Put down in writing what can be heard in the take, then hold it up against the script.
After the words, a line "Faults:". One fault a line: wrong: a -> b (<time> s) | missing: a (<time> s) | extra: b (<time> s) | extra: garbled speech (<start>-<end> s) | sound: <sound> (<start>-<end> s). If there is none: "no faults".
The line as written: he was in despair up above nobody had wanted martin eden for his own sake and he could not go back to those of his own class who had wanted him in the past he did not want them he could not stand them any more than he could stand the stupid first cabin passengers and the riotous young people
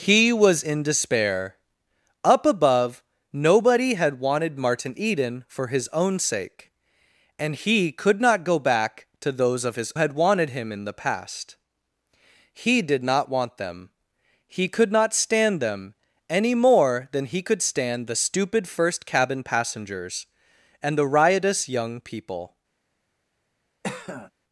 he was in despair up above nobody had wanted martin eden for his own sake and he could not go back to those of his had wanted him in the past he did not want them he could not stand them any more than he could stand the stupid first cabin passengers and the riotous young people
Faults:
missing: own class who (9.9 s)
sound: cough (23.8-24.3 s)